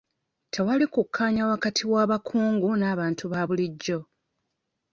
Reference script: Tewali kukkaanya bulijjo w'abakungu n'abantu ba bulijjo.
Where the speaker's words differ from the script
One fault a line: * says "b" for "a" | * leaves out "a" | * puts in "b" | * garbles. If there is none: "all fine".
* says "wakati" for "bulijjo"